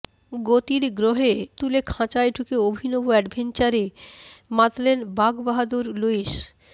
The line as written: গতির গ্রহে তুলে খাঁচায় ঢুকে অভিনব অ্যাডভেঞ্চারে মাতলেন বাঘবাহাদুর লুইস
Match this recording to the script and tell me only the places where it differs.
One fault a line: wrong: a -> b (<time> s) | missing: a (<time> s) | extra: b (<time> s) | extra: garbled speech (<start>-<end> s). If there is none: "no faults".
no faults